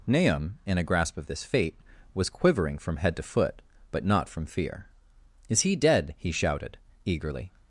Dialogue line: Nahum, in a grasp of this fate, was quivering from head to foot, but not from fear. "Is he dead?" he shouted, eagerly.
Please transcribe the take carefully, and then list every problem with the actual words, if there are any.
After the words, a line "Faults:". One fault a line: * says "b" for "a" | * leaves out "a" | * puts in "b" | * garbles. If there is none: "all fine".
Nahum, in a grasp of this fate, was quivering from head to foot, but not from fear. "Is he dead?" he shouted, eagerly.
Faults:
all fine